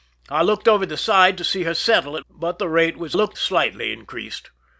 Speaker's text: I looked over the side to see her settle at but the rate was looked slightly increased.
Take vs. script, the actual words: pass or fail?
pass